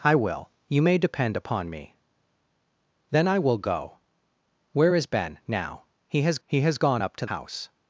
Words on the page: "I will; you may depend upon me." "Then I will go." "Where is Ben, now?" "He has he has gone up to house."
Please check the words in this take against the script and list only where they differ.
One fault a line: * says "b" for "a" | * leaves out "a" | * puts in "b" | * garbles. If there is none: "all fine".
all fine